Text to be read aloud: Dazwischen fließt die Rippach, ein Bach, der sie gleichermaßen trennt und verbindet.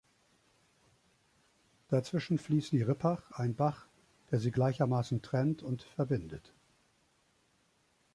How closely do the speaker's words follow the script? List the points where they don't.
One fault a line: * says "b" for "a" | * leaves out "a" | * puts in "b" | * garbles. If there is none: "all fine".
all fine